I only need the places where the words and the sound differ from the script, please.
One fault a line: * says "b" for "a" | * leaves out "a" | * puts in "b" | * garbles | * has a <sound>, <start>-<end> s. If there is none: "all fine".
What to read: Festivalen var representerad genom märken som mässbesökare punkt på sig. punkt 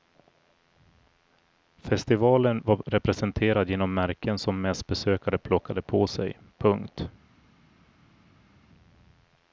* says "plockade" for "punkt"